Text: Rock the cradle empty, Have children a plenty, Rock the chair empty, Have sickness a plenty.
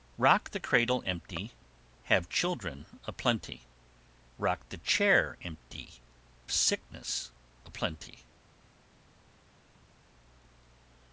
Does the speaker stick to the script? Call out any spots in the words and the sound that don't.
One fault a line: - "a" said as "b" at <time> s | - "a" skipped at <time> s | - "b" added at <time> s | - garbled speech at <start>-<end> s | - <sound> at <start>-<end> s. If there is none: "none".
- "Have" skipped at 6.0 s